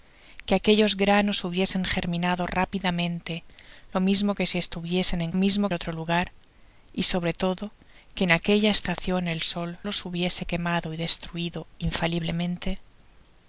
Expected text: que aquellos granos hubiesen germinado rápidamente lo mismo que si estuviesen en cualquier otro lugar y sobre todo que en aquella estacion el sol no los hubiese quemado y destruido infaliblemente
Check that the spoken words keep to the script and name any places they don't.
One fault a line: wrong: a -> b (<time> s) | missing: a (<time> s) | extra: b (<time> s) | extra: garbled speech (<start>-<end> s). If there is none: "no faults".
wrong: cualquier -> mismo (5.3 s)
missing: no (9.8 s)